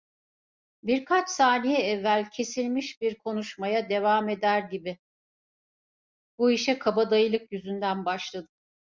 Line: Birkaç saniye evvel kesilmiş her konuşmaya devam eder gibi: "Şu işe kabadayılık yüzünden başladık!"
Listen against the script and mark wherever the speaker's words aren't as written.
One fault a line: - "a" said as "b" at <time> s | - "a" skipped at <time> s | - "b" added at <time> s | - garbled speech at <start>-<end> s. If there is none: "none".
- "her" said as "bir" at 3.0 s
- "Şu" said as "Bu" at 6.4 s